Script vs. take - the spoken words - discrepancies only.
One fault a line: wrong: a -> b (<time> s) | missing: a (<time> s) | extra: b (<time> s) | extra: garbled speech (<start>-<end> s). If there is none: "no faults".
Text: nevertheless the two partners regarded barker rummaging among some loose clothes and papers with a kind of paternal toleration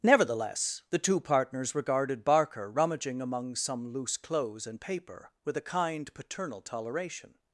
wrong: papers -> paper (4.8 s)
missing: of (6.1 s)